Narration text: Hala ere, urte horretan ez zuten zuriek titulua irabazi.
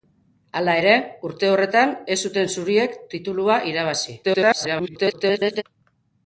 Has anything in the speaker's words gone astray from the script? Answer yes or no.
yes